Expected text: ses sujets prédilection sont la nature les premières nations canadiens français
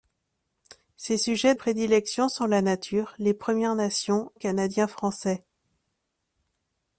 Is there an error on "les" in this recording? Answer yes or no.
no